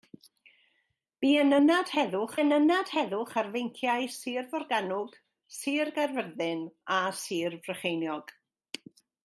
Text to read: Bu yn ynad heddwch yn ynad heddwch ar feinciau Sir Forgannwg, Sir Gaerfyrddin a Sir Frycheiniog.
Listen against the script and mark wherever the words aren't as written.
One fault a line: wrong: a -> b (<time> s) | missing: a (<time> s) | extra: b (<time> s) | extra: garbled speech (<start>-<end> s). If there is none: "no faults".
no faults